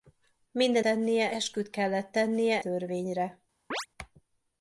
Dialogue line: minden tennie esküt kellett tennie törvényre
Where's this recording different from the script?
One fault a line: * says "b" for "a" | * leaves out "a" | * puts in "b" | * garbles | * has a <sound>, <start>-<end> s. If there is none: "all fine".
* has a chirp, 3.7-3.9 s